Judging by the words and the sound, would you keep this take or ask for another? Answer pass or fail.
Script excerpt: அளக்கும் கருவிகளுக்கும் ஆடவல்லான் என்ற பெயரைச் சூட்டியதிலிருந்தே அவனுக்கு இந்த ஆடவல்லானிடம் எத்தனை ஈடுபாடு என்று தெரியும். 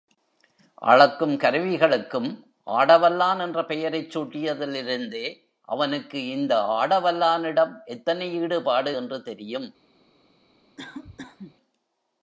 fail